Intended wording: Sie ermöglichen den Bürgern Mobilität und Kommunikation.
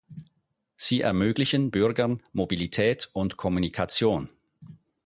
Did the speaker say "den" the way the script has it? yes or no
no